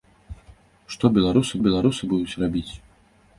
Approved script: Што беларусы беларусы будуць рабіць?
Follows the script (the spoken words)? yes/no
yes